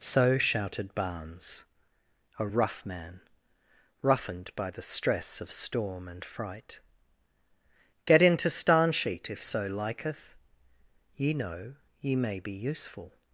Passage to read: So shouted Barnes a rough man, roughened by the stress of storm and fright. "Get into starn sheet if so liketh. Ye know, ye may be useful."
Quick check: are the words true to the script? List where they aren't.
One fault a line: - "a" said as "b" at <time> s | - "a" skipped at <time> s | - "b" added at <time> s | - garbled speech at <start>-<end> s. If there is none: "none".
none